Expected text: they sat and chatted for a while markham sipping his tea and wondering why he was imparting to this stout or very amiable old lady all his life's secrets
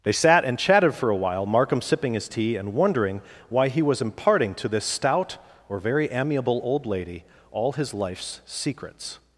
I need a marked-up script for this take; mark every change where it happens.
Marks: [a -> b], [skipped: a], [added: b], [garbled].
they sat and chatted for a while markham sipping his tea and wondering why he was imparting to this stout or very amiable old lady all his life's secrets